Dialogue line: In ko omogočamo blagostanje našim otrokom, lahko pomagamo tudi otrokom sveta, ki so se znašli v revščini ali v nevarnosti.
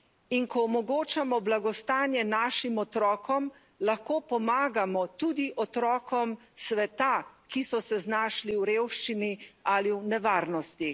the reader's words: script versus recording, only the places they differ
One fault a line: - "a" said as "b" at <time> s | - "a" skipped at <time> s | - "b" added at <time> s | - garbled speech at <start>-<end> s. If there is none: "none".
none